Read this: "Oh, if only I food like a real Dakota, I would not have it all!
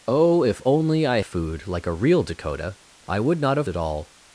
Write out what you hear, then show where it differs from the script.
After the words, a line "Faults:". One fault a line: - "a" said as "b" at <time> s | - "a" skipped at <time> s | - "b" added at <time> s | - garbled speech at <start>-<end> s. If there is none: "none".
"Oh, if only I food like a real Dakota, I would not have it all!
Faults:
none